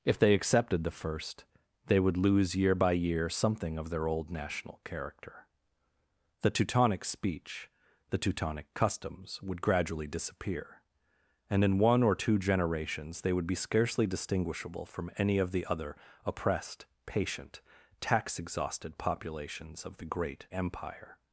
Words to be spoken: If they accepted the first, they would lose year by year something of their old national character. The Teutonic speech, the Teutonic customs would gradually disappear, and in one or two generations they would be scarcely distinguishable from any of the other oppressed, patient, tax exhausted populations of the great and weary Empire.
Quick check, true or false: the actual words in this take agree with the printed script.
false